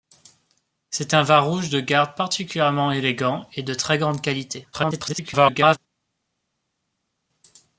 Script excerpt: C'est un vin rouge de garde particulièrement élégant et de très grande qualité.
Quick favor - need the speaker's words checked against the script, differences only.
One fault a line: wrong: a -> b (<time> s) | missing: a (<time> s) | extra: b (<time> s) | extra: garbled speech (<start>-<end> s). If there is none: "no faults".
extra: garbled speech (4.7-5.8 s)